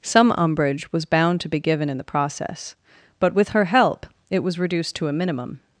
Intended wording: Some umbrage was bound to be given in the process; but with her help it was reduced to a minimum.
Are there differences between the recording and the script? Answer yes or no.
no